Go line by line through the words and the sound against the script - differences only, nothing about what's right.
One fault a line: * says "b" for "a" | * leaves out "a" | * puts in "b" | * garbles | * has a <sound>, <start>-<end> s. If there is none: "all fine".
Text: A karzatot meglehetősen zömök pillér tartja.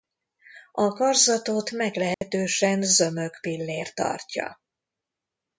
* has a dropout, 2.1-2.2 s